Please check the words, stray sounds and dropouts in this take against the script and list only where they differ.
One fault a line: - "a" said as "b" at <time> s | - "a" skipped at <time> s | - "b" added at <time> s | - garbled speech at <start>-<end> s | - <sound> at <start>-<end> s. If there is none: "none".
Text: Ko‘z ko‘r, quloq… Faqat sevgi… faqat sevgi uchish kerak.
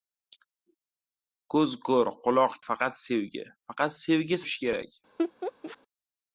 - laugh at 5.2-5.8 s